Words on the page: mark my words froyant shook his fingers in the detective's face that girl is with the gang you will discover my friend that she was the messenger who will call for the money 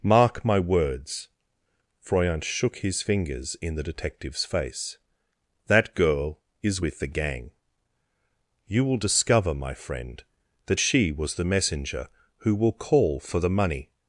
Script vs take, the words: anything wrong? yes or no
no